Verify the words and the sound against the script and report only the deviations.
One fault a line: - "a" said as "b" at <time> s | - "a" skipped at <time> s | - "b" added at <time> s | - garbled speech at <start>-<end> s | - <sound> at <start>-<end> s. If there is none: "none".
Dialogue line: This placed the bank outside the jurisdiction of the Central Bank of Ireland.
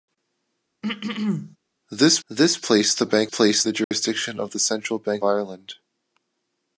- throat clearing at 0.8-1.6 s
- "this" added at 2.3 s
- "outside" said as "placed" at 3.3 s
- dropout at 3.8-3.9 s
- "of" skipped at 5.2 s